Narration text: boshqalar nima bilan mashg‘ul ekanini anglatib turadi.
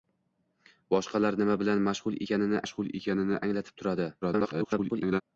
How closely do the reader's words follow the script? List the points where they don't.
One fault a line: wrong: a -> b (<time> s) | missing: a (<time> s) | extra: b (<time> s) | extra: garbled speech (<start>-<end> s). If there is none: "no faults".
extra: mashg‘ul ekanini (2.6 s)
extra: garbled speech (4.2-5.2 s)